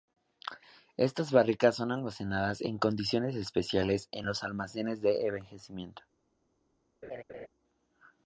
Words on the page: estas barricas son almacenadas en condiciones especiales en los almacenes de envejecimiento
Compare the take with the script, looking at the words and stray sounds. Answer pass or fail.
fail